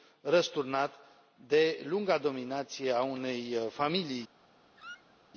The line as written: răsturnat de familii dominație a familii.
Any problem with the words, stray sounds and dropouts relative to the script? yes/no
yes